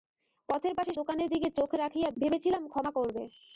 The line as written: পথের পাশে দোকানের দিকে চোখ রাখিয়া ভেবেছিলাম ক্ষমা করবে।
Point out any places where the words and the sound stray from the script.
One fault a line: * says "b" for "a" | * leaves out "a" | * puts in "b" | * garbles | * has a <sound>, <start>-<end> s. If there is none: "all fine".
all fine